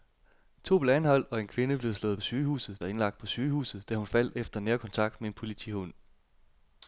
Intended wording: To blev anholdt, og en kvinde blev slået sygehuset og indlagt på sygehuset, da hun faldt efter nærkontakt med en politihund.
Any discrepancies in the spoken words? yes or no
no